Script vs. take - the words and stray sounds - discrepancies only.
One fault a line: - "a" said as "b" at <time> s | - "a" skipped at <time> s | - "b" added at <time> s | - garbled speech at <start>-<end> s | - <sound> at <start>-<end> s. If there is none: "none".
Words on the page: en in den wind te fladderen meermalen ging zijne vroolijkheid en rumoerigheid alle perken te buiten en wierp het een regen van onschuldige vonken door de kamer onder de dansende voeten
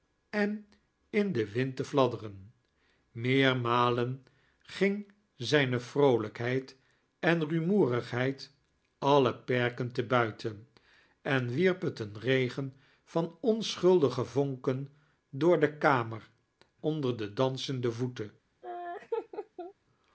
- laugh at 18.6-19.7 s